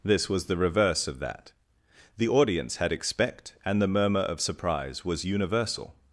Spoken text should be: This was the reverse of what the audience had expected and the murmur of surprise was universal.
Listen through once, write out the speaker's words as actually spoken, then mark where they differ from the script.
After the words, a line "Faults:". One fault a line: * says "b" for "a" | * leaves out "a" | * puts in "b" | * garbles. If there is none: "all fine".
This was the reverse of that the audience had expect and the murmur of surprise was universal.
Faults:
* says "that" for "what"
* says "expect" for "expected"